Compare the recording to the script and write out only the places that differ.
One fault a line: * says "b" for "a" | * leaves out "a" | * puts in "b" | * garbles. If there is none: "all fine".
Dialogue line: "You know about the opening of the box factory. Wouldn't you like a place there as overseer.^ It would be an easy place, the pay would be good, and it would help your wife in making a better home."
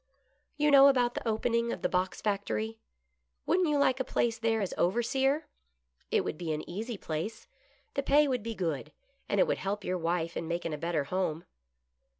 all fine